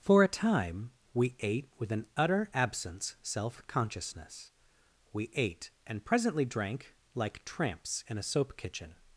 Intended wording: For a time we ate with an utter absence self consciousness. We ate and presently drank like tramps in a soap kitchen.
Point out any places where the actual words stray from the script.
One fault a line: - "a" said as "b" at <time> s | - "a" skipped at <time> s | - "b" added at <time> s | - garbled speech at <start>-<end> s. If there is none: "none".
none